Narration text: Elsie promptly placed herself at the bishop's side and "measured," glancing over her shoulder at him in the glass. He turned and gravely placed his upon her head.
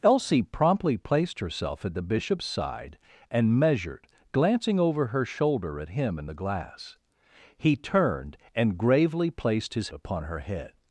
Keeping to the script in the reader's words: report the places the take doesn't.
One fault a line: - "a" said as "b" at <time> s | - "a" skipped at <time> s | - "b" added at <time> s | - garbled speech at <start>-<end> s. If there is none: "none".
none